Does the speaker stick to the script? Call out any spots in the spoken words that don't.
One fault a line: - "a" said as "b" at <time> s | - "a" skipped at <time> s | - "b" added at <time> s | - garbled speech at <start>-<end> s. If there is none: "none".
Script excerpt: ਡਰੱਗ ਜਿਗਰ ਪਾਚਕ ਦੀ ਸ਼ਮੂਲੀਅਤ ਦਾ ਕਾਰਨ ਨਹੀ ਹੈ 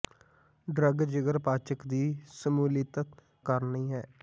- "ਦਾ" skipped at 3.0 s